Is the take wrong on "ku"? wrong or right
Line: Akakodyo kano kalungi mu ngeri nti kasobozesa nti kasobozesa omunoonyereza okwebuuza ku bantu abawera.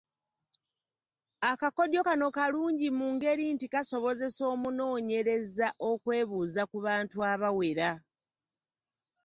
right